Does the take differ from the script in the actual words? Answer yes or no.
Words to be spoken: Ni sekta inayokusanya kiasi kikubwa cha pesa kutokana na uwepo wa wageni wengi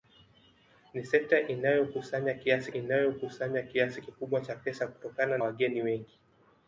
yes